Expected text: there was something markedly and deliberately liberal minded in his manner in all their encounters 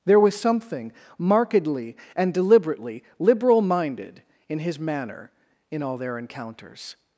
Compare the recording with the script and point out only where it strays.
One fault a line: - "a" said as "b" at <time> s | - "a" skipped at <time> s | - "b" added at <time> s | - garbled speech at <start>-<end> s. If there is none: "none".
none